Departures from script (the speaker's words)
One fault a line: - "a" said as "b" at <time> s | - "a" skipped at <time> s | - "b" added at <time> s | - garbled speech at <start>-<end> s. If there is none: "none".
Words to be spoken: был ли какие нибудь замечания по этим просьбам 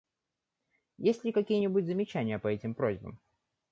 - "был" said as "есть" at 1.0 s